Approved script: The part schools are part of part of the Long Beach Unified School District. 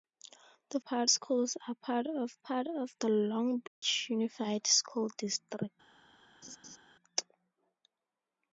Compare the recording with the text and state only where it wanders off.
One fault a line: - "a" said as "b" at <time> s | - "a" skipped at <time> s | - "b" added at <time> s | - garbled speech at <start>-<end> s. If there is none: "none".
none